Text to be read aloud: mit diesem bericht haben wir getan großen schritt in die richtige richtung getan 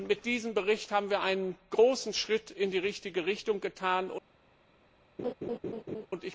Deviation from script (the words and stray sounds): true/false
true